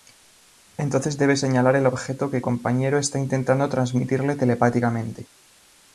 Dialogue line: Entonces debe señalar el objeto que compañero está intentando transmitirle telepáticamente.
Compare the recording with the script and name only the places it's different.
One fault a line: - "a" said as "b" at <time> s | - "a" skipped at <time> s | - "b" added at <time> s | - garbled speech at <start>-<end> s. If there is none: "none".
none